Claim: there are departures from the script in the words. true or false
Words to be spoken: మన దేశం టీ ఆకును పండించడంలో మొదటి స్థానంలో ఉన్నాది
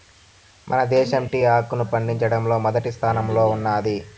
false